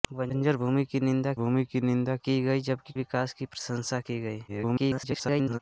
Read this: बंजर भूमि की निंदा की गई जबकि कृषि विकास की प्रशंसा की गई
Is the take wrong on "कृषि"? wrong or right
wrong